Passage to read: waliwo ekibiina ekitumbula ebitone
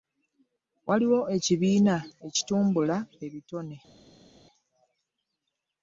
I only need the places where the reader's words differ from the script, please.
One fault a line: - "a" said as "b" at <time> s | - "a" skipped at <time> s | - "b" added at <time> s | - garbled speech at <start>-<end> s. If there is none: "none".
none